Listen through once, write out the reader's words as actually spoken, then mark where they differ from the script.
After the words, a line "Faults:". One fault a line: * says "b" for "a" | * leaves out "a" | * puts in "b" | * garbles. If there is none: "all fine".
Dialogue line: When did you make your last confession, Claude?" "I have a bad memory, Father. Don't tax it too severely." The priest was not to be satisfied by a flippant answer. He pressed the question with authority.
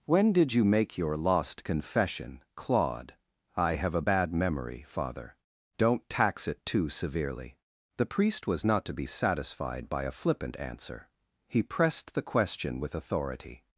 When did you make your lost confession, Claude?" "I have a bad memory, Father. Don't tax it too severely." The priest was not to be satisfied by a flippant answer. He pressed the question with authority.
Faults:
* says "lost" for "last"